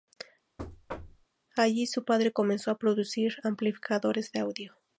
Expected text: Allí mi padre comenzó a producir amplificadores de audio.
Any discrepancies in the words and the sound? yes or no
yes